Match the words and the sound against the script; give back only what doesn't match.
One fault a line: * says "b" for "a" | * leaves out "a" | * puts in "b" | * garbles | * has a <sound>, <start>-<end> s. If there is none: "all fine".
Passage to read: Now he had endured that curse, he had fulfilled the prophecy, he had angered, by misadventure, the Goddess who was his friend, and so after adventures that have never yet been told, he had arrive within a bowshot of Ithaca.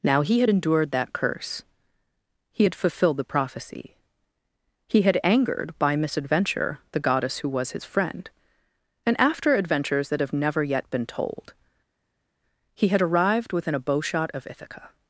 * leaves out "so"
* says "arrived" for "arrive"